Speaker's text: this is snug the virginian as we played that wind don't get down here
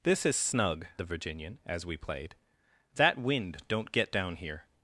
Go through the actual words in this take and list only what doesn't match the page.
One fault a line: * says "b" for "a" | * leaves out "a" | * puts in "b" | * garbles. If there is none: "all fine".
all fine